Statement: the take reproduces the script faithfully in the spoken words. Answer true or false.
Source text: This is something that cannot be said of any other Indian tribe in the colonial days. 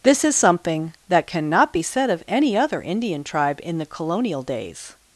true